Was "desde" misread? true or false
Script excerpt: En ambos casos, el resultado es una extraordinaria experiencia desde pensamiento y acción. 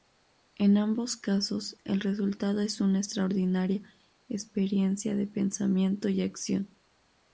true